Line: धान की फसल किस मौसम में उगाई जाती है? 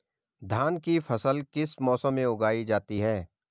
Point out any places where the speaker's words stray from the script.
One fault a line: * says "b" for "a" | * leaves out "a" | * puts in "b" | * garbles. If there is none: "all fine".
all fine